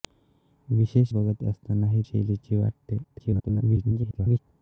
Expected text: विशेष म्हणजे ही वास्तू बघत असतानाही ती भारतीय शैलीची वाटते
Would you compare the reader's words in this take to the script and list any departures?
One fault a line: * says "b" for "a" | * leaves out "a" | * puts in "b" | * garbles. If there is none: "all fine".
* leaves out "म्हणजे ही वास्तू"
* leaves out "ती भारतीय"
* garbles